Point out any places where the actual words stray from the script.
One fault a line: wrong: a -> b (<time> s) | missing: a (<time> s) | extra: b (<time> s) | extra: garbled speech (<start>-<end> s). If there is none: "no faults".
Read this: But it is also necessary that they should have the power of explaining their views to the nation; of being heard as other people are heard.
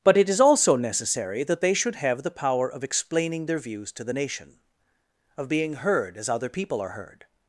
no faults